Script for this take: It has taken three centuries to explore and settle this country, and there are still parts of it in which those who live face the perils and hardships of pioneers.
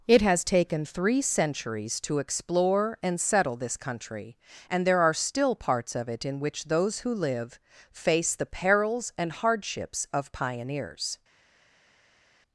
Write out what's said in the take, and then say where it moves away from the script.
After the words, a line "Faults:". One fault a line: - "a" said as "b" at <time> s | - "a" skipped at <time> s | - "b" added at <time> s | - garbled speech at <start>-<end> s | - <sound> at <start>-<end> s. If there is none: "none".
It has taken three centuries to explore and settle this country, and there are still parts of it in which those who live face the perils and hardships of pioneers.
Faults:
none